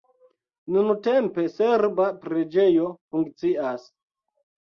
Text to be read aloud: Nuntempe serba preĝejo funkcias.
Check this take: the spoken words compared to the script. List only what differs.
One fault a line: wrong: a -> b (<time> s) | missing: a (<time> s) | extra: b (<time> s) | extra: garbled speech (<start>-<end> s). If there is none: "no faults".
no faults